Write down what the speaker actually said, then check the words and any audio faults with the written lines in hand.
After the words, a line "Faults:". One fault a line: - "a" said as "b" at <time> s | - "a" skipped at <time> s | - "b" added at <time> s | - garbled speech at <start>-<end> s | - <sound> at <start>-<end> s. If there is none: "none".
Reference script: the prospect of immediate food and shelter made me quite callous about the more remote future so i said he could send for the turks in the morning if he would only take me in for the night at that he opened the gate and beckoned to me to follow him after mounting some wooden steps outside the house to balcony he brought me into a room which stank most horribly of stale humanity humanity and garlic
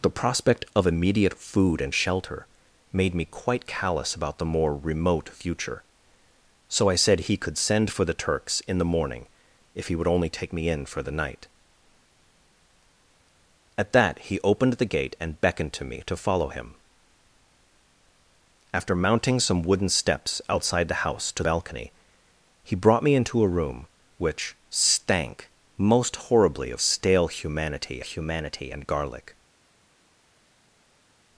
the prospect of immediate food and shelter made me quite callous about the more remote future so i said he could send for the turks in the morning if he would only take me in for the night at that he opened the gate and beckoned to me to follow him after mounting some wooden steps outside the house to balcony he brought me into a room which stank most horribly of stale humanity humanity and garlic
Faults:
none